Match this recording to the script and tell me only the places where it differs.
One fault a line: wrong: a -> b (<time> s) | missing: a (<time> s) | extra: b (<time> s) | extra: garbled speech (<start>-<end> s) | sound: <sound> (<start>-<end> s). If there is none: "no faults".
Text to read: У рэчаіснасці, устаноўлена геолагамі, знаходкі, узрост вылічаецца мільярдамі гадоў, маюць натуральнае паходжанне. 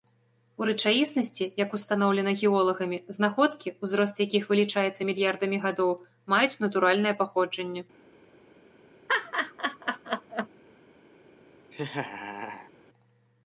extra: як (1.6 s)
extra: якіх (4.2 s)
sound: laugh (9.1-10.5 s)
sound: laugh (11.7-12.7 s)